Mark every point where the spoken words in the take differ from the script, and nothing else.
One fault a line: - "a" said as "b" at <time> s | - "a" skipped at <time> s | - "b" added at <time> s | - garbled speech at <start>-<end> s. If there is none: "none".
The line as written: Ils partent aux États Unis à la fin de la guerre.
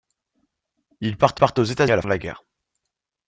- "partent" added at 1.3 s
- "Unis" skipped at 1.9 s
- "fin" skipped at 2.0 s